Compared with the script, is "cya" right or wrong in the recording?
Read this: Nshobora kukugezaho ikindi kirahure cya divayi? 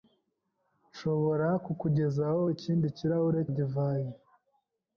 wrong